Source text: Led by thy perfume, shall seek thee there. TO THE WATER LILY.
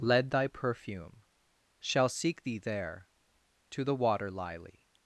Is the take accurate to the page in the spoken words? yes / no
no